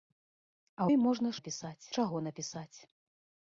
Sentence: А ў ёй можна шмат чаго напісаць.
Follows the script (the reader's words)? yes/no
no